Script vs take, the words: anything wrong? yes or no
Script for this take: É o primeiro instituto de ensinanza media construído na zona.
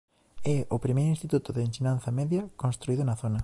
no